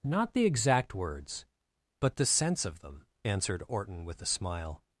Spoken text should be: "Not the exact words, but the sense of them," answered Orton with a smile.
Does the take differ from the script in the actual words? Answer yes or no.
no